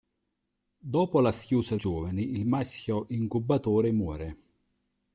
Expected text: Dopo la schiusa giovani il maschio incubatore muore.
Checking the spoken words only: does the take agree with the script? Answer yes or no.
yes